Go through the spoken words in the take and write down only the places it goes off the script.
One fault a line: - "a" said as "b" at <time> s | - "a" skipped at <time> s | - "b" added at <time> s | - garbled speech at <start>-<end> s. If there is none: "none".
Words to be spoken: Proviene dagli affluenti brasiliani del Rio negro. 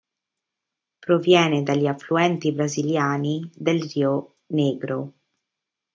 none